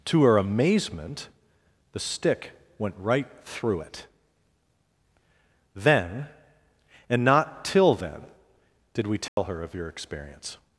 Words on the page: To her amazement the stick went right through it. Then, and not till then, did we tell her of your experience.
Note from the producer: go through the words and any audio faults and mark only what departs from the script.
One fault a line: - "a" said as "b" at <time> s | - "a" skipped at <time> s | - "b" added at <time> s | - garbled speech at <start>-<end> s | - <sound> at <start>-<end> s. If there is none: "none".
- dropout at 9.3-9.4 s